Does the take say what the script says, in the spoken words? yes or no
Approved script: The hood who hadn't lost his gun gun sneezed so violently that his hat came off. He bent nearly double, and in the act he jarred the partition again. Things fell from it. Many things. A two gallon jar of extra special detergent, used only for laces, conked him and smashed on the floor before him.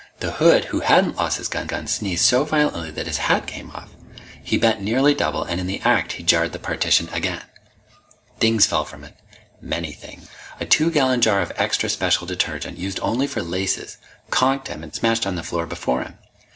yes